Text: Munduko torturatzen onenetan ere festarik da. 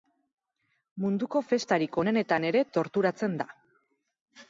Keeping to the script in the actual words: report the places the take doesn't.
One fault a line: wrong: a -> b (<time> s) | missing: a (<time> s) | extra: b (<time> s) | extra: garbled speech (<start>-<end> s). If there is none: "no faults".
wrong: torturatzen -> festarik (1.5 s)
wrong: festarik -> torturatzen (2.8 s)